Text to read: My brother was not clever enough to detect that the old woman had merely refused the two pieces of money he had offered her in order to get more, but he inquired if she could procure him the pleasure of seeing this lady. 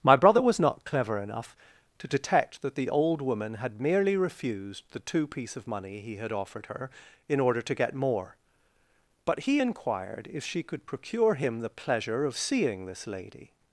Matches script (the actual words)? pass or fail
fail